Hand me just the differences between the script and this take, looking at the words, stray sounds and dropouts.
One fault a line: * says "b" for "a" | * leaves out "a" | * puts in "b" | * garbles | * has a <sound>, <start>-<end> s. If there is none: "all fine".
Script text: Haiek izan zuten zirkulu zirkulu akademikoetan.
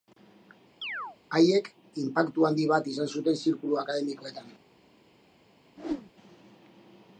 * has a chirp, 0.8-1.2 s
* puts in "inpaktu handi bat"
* leaves out "zirkulu"
* has a whoosh, 5.8-6.1 s